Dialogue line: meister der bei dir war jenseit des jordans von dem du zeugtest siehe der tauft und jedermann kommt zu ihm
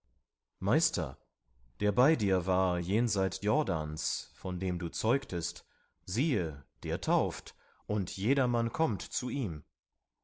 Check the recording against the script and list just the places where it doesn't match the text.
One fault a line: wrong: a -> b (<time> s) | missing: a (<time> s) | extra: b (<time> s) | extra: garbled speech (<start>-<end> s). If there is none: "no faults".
missing: des (3.4 s)